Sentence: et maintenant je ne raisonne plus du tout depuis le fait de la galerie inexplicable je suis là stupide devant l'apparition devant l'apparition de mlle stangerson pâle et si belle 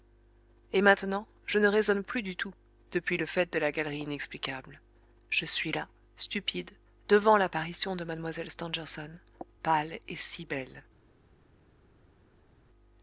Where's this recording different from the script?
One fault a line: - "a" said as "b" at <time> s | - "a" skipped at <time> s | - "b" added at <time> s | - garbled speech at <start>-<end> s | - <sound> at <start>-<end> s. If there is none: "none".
- "devant l'apparition" skipped at 8.0 s